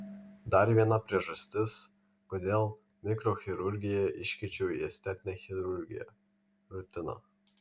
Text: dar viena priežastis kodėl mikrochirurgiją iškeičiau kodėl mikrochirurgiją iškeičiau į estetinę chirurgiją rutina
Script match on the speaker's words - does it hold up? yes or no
no